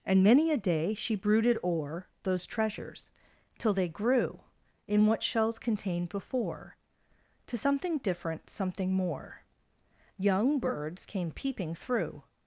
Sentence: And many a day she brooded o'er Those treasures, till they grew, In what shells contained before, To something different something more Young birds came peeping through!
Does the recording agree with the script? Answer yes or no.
yes